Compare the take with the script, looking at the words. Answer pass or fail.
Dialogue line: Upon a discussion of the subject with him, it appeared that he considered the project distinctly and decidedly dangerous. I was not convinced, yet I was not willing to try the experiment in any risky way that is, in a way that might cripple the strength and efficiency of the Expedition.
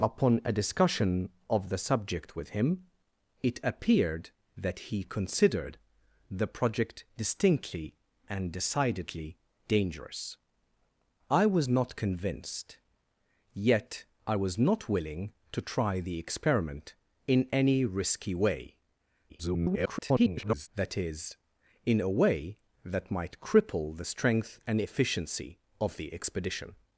fail